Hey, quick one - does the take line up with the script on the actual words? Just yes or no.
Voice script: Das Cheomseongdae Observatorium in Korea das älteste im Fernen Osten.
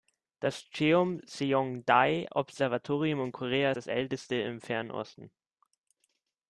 yes